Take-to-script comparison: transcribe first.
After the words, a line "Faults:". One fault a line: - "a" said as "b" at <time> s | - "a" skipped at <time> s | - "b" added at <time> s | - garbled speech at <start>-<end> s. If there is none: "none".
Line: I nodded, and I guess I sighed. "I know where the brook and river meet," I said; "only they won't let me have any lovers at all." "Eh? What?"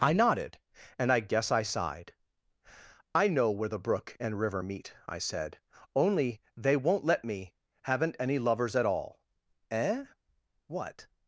I nodded, and I guess I sighed. "I know where the brook and river meet," I said; "only they won't let me haven't any lovers at all." "Eh? What?"
Faults:
- "have" said as "haven't" at 7.8 s